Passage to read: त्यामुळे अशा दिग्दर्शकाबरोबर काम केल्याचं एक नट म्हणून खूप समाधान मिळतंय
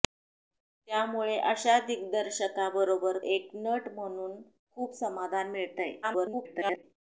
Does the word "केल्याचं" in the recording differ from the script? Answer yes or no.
yes